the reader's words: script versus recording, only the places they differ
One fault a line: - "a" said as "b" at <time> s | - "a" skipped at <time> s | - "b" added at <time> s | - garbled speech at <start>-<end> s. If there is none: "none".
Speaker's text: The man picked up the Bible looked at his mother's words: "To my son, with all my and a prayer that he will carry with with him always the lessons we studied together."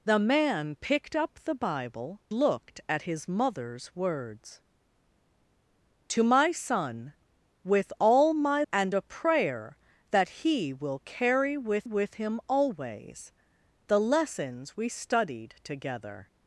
none